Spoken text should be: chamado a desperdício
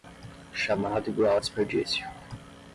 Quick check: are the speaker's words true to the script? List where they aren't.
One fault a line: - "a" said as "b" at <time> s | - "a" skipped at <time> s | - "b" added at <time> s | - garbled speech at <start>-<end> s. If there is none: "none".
- "igual" added at 1.1 s